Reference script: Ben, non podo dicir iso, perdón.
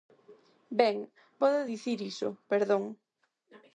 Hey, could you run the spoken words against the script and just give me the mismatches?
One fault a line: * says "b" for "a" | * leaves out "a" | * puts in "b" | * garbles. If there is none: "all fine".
* leaves out "non"